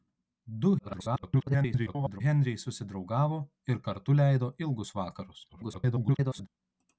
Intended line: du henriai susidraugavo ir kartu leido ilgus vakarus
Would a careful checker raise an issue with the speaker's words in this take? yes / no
yes